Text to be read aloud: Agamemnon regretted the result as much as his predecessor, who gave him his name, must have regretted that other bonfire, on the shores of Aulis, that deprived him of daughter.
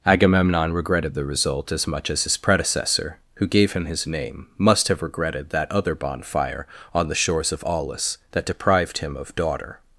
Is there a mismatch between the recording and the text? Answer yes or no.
no